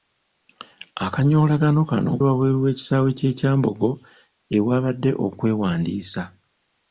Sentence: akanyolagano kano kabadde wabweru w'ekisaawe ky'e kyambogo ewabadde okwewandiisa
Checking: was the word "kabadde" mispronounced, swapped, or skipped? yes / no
yes